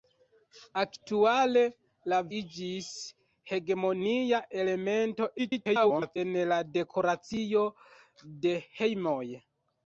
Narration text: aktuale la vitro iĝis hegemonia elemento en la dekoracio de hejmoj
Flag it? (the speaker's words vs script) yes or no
yes